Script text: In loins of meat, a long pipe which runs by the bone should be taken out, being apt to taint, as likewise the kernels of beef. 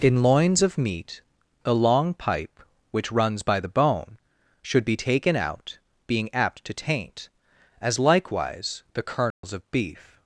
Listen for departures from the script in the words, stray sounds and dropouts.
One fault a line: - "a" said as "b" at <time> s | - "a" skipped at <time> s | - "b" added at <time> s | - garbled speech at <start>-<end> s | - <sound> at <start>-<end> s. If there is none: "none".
- dropout at 9.3-9.4 s